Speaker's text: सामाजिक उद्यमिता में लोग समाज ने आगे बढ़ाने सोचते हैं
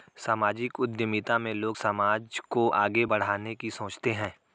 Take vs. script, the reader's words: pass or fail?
fail